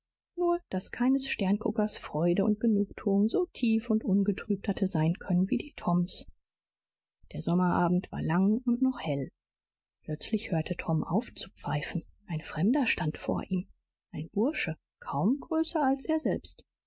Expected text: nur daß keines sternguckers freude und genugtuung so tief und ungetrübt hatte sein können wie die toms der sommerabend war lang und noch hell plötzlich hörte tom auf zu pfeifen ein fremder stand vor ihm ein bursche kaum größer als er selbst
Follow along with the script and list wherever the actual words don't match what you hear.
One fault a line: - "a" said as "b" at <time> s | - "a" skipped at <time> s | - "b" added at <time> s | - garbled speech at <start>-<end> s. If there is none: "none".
none